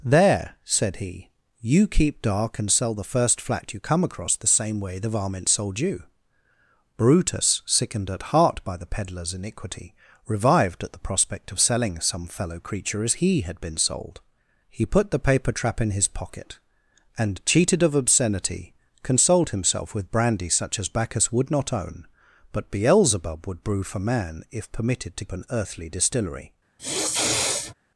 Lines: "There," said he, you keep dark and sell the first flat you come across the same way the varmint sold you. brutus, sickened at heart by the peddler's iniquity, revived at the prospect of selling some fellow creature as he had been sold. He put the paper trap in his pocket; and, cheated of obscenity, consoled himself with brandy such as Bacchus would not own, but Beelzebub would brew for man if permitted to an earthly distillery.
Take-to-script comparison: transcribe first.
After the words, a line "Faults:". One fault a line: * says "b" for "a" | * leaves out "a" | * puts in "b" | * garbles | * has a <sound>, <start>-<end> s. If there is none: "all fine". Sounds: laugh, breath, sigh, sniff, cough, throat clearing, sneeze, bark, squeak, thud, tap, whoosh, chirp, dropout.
"There," said he, you keep dark and sell the first flat you come across the same way the varmint sold you. brutus, sickened at heart by the peddler's iniquity, revived at the prospect of selling some fellow creature as he had been sold. He put the paper trap in his pocket; and, cheated of obscenity, consoled himself with brandy such as Bacchus would not own, but Beelzebub would brew for man if permitted to an earthly distillery.
Faults:
* has a sniff, 26.8-27.7 s